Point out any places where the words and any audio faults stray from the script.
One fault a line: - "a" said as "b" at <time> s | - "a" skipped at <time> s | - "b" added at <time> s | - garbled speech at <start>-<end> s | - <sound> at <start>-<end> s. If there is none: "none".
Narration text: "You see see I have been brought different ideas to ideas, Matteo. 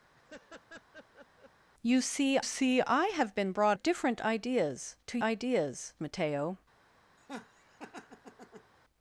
- laugh at 0.1-1.5 s
- laugh at 7.2-8.7 s